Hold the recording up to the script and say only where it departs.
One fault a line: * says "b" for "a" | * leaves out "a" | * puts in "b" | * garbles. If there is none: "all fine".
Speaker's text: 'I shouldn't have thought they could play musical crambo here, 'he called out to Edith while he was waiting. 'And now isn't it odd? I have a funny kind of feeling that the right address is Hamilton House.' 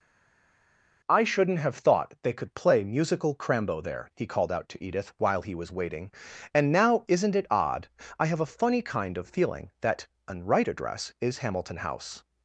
* says "there" for "here"
* says "an" for "the"